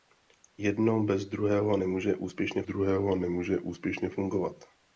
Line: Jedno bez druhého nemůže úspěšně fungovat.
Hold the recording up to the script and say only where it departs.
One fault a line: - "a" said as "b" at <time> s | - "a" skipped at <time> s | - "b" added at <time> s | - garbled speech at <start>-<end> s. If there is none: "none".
- "druhého nemůže úspěšně" added at 2.6 s